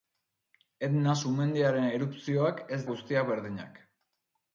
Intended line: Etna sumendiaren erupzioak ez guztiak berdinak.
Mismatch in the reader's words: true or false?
false